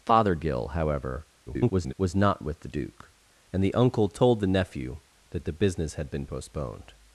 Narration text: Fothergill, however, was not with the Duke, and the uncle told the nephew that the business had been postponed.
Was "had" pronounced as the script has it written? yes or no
yes